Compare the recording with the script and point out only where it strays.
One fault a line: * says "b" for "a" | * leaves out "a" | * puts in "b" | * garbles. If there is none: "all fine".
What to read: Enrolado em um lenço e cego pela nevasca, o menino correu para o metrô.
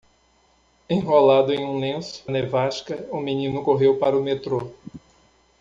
* leaves out "e cego pela"